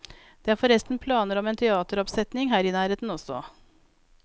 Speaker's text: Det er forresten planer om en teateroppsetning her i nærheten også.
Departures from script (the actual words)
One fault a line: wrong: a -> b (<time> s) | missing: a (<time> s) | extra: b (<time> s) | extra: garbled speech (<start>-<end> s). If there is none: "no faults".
no faults